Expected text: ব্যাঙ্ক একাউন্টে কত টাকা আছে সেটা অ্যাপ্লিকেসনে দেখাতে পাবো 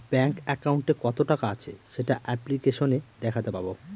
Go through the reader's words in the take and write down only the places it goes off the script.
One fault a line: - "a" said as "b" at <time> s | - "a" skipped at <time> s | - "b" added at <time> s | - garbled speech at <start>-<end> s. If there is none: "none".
none